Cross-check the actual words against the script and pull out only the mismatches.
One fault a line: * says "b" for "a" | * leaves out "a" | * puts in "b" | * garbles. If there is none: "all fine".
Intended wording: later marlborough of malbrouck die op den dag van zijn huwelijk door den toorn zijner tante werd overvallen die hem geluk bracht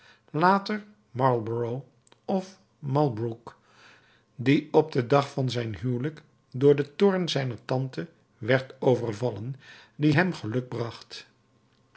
all fine